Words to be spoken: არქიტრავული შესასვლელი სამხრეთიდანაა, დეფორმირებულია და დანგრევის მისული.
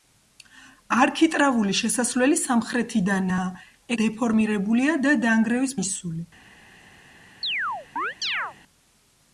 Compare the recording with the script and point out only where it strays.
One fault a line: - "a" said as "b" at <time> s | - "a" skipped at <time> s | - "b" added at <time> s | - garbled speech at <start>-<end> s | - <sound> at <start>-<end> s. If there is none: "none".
- chirp at 7.4-8.5 s